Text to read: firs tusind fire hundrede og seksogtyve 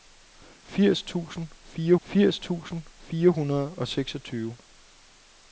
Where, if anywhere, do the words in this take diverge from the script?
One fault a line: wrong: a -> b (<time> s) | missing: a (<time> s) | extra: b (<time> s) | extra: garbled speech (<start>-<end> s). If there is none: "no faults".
extra: firs tusind fire (2.0 s)